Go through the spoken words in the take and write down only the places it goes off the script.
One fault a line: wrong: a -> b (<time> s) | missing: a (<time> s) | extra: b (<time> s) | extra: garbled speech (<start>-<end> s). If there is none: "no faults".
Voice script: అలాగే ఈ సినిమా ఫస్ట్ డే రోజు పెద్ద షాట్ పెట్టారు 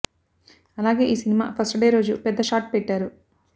no faults